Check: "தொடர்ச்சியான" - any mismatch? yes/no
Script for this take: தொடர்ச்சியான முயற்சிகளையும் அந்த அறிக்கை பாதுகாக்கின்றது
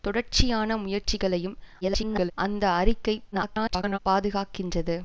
no